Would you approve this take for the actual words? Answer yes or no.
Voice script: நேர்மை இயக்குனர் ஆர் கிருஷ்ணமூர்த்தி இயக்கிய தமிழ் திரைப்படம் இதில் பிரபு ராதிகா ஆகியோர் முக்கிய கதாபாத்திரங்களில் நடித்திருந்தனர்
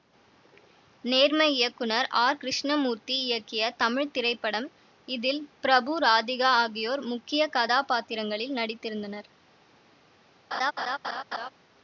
yes